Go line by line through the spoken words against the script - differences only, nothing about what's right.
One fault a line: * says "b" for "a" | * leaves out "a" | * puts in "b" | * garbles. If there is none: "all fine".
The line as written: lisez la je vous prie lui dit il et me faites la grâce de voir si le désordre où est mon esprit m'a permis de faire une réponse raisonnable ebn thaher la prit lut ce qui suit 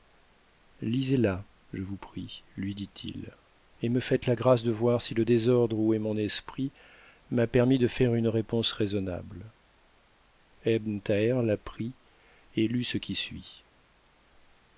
* puts in "et"